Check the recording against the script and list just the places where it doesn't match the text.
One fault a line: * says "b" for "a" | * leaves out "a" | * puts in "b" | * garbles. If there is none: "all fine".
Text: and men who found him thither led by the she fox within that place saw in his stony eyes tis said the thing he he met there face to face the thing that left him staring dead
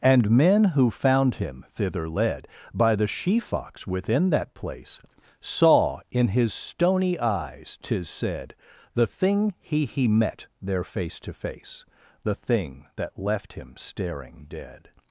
all fine